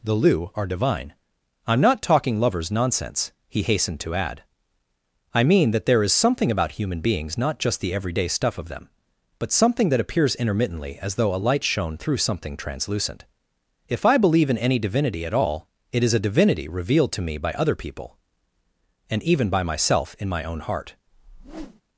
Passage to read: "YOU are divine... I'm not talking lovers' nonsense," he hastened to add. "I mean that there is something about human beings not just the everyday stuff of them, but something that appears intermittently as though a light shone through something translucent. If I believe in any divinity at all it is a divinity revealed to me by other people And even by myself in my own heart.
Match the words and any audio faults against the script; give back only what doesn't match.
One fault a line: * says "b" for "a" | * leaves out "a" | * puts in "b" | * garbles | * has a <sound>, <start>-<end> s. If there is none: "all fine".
* says "The lu" for "YOU"
* has a whoosh, 21.1-21.8 s